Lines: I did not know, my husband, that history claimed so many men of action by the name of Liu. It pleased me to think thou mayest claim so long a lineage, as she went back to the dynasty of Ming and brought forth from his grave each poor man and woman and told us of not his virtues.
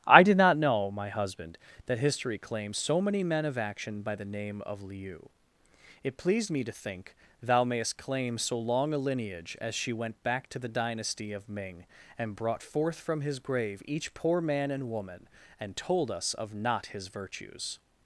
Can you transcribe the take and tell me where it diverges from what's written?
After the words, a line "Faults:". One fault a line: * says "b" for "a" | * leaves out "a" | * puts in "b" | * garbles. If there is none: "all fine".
I did not know, my husband, that history claims so many men of action by the name of Liu. It pleased me to think thou mayest claim so long a lineage, as she went back to the dynasty of Ming and brought forth from his grave each poor man and woman and told us of not his virtues.
Faults:
* says "claims" for "claimed"